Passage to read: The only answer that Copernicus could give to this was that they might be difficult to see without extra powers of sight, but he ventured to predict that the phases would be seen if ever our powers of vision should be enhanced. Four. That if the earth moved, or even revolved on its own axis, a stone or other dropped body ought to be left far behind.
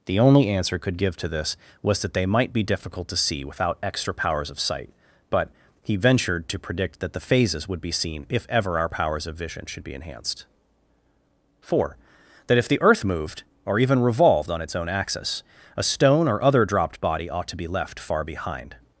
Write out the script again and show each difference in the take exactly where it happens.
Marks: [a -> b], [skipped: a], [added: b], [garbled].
The only answer [skipped: that Copernicus] could give to this was that they might be difficult to see without extra powers of sight, but he ventured to predict that the phases would be seen if ever our powers of vision should be enhanced. Four. That if the earth moved, or even revolved on its own axis, a stone or other dropped body ought to be left far behind.